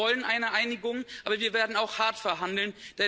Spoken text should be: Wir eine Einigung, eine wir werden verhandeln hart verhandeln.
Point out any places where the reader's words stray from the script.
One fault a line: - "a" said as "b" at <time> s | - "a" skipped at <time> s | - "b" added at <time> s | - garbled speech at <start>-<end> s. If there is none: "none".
- "wollen" added at 0.1 s
- "eine" said as "aber" at 1.2 s
- "verhandeln" said as "auch" at 1.8 s